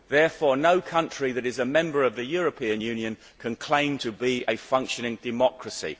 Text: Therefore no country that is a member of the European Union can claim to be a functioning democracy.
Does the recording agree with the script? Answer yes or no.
yes